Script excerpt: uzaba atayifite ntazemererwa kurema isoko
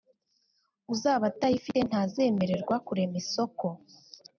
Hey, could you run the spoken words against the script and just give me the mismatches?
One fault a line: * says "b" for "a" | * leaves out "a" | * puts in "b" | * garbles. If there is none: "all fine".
all fine